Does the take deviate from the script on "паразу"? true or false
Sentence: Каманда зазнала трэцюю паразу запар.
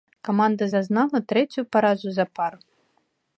false